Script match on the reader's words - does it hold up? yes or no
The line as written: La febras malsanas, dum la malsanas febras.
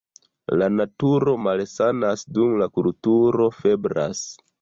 no